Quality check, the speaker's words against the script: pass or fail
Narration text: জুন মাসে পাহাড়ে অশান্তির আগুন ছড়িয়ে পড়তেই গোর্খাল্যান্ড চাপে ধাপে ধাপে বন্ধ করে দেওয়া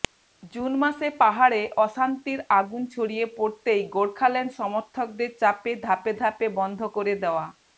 fail